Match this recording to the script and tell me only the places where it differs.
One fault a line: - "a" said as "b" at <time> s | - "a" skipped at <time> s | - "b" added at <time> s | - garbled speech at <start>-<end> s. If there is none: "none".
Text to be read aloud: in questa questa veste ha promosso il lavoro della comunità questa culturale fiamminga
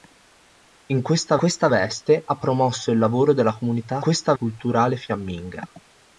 none